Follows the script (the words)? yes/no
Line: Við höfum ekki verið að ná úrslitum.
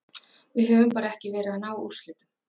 no